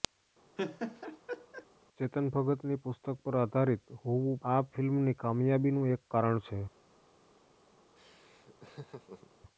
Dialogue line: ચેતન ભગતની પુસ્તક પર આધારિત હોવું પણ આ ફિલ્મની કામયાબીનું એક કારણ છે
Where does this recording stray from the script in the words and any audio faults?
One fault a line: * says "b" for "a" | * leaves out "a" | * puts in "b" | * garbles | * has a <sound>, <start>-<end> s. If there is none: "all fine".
* has a laugh, 0.6-1.7 s
* leaves out "પણ"
* has a laugh, 8.0-9.3 s